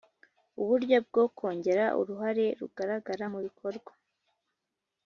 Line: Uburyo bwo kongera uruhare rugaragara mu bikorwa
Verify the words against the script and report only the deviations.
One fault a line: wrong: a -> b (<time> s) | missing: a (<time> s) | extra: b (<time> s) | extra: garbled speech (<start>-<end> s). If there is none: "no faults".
no faults